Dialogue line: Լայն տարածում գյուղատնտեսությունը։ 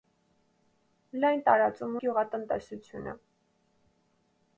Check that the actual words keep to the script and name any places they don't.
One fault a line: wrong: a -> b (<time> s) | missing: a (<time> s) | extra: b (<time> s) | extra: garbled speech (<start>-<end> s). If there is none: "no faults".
no faults